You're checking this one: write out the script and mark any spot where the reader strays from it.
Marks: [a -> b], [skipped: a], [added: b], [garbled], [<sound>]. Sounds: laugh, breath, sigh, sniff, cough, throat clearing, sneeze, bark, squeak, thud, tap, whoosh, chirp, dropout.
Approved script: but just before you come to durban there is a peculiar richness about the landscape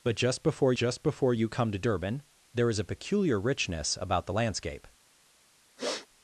but just before [added: just before] you come to durban there is a peculiar richness about the landscape [sniff]